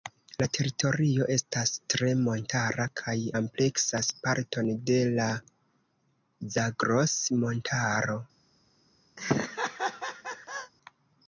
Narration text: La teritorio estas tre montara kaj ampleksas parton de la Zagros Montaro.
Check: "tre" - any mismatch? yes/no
no